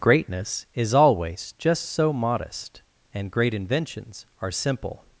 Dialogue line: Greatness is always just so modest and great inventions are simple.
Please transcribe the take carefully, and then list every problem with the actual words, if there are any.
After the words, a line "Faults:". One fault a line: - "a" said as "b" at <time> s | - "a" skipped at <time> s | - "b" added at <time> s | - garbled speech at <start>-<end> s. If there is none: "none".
Greatness is always just so modest and great inventions are simple.
Faults:
none